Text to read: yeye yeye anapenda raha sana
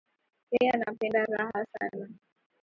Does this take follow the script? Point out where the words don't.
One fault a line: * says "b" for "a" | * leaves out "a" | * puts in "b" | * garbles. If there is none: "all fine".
* leaves out "yeye"